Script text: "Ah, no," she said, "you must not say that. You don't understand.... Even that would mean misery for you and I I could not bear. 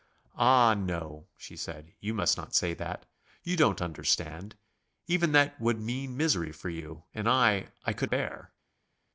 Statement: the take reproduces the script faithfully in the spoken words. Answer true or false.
false